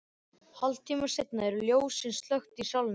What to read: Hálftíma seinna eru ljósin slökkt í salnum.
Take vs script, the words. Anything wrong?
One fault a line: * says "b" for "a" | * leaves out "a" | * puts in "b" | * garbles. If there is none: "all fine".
all fine